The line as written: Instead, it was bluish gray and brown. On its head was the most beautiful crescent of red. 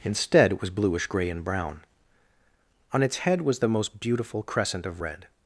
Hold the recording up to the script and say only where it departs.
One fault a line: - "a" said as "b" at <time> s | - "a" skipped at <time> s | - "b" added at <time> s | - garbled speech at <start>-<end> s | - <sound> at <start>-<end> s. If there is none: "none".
none